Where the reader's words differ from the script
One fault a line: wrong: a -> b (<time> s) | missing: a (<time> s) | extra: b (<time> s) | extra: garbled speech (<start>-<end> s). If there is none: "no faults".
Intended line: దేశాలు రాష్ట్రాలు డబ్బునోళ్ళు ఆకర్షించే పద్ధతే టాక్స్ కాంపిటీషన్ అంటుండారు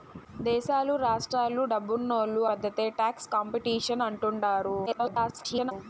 missing: ఆకర్షించే (2.4 s)
extra: garbled speech (4.9-5.7 s)